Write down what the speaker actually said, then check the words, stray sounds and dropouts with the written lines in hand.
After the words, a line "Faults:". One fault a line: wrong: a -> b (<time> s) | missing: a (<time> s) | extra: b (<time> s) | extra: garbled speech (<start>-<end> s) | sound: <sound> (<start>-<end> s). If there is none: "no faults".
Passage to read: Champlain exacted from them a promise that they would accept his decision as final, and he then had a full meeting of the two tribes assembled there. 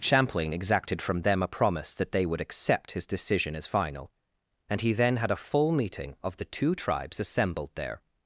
Champlain exacted from them a promise that they would accept his decision as final, and he then had a full meeting of the two tribes assembled there.
Faults:
no faults